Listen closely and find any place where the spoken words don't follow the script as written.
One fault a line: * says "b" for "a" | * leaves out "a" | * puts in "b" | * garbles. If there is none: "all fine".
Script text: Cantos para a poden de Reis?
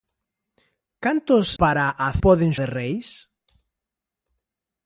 all fine